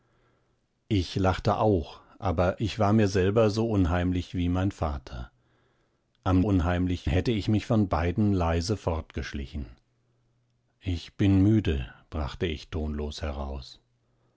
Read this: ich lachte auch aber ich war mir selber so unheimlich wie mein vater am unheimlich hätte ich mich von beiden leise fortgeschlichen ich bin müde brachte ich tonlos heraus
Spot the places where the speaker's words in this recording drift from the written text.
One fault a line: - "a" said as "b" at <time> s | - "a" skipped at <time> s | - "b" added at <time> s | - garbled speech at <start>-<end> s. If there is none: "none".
none